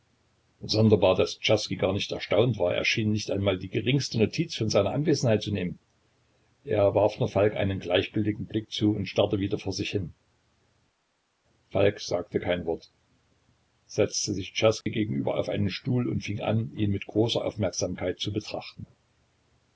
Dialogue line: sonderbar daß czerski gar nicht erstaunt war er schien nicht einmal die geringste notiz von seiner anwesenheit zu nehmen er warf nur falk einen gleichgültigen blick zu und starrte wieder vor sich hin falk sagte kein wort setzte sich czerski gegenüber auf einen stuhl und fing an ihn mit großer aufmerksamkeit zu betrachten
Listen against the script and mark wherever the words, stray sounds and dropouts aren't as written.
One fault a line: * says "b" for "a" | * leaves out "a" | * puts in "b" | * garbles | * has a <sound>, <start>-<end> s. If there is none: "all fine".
* has a dropout, 14.8-14.9 s